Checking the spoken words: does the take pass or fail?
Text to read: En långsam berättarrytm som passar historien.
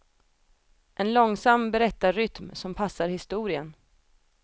pass